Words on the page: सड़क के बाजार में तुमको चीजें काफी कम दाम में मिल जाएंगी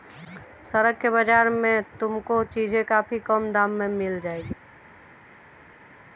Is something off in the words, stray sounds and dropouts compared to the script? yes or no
no